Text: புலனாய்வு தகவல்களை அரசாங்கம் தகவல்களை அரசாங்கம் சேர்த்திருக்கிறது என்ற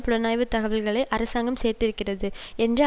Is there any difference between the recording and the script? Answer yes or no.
yes